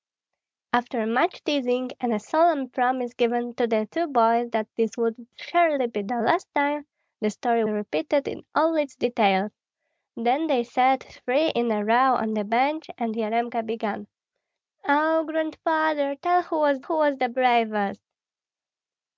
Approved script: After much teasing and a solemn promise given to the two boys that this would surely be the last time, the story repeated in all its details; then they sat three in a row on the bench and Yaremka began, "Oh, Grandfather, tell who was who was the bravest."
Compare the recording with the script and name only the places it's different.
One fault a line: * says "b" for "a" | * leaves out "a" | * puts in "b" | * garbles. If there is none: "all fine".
all fine